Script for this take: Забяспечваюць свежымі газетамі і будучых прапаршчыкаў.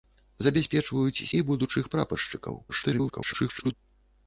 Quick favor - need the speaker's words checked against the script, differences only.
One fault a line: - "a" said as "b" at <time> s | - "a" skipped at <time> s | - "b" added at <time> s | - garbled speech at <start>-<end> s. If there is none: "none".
- "свежымі газетамі" skipped at 1.2 s
- garbled speech at 2.7-3.7 s